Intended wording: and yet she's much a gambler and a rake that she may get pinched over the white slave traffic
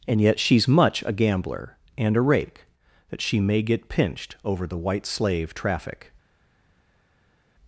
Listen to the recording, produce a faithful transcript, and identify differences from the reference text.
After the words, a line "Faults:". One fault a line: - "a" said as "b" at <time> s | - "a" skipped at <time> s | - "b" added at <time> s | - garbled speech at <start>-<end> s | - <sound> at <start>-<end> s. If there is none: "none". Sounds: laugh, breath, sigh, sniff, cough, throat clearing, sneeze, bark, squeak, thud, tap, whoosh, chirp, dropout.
and yet she's much a gambler and a rake that she may get pinched over the white slave traffic
Faults:
none